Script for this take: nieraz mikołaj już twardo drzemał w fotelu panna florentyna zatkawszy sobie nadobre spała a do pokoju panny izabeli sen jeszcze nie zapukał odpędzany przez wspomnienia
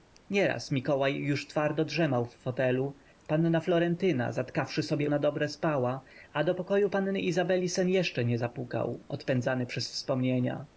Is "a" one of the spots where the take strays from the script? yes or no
no